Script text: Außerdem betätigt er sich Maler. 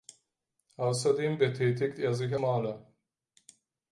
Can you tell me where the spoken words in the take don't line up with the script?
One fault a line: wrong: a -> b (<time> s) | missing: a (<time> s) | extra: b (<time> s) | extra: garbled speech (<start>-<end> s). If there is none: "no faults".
no faults